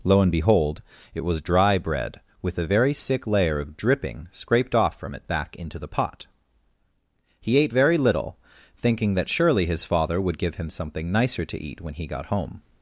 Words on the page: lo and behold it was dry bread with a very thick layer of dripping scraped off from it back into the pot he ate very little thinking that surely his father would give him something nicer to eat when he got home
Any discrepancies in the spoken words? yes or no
yes